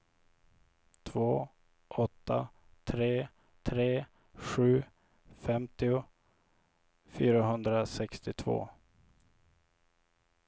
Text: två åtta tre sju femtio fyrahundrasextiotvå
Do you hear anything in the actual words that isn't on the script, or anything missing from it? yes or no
yes